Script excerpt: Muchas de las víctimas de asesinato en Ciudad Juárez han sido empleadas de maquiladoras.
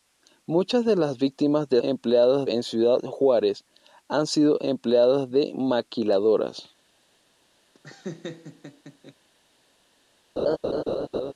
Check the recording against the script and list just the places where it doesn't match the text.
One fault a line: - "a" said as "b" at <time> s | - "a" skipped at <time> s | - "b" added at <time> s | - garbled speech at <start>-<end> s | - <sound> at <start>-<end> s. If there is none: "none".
- "asesinato" said as "empleadas" at 1.8 s
- laugh at 7.7-9.1 s
- laugh at 10.4-11.3 s